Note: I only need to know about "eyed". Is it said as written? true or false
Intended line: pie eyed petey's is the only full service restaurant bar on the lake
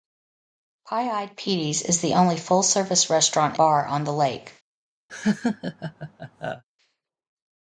true